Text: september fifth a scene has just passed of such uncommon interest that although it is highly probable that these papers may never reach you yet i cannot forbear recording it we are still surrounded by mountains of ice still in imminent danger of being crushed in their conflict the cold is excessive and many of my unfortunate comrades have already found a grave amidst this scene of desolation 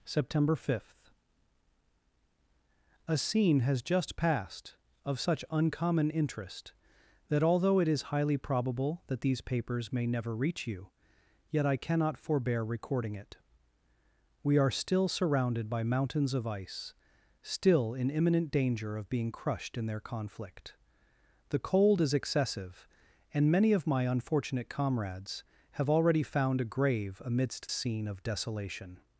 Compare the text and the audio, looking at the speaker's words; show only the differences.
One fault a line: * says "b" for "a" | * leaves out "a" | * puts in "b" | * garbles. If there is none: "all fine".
* leaves out "this"